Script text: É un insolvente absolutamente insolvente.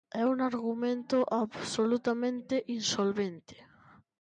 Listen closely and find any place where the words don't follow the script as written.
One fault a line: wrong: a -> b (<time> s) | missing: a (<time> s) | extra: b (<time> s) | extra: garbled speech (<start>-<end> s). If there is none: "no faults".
wrong: insolvente -> argumento (0.4 s)